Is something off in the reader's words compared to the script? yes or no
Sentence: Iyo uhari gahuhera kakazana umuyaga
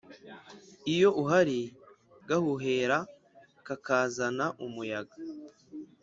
no